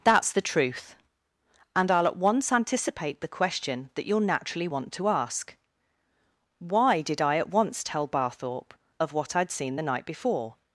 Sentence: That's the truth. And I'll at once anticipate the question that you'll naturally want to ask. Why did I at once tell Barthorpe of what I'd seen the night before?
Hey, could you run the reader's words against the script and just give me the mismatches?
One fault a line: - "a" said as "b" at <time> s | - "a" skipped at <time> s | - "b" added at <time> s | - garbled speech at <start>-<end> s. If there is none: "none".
none